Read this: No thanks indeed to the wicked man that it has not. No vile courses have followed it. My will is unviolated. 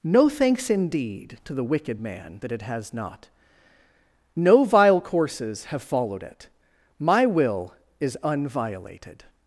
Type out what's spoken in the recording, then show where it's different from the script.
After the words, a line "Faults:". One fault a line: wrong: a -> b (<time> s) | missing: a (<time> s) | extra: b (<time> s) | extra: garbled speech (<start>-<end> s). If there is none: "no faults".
No thanks indeed to the wicked man that it has not. No vile courses have followed it. My will is unviolated.
Faults:
no faults